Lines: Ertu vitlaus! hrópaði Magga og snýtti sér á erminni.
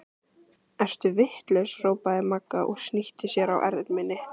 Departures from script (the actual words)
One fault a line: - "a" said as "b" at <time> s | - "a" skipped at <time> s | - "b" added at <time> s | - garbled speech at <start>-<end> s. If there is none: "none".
none